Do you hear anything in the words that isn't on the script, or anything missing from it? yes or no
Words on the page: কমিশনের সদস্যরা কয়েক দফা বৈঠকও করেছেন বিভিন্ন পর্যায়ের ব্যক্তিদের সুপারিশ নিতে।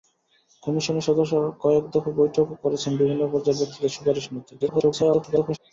yes